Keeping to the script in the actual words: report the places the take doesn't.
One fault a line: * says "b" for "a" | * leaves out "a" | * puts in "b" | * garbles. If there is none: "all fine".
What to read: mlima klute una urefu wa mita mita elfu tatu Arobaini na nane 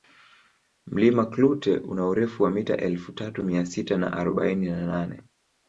* leaves out "mita"
* puts in "Mia sita na"